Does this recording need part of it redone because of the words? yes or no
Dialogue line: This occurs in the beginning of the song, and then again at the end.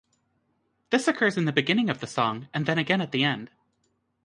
no